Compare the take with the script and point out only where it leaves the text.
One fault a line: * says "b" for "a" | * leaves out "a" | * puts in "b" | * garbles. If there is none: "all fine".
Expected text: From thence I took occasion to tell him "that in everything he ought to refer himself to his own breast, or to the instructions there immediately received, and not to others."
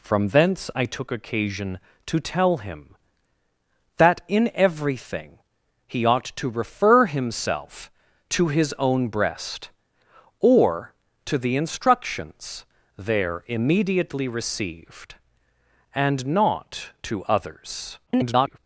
* garbles